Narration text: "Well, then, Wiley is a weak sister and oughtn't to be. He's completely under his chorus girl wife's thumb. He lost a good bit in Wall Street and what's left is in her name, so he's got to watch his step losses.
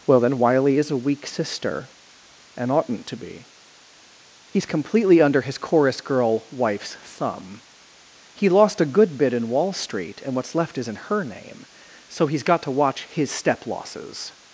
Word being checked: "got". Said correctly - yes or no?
yes